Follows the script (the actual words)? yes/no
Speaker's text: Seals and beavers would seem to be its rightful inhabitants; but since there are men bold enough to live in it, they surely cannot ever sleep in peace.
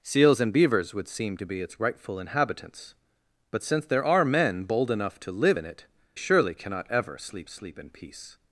no